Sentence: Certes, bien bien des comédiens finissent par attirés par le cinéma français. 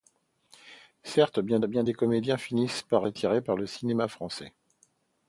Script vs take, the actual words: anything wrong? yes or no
no